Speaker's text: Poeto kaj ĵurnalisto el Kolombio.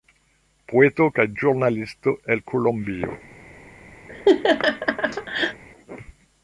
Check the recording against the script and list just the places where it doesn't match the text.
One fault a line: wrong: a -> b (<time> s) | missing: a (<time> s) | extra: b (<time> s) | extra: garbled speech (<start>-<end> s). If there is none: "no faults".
no faults